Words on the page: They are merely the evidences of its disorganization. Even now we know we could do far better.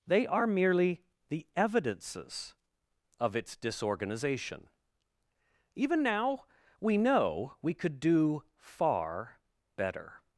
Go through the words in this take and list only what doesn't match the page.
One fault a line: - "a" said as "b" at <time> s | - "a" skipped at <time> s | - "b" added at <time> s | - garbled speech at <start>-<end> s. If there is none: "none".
none